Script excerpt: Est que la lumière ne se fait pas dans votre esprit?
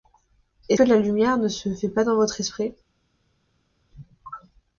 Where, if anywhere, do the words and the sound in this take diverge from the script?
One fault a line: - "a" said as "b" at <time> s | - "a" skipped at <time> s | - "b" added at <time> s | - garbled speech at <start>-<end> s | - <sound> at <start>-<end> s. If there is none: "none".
none